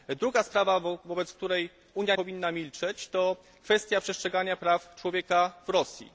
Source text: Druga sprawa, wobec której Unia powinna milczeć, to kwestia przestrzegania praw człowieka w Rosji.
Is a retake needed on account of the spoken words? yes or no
no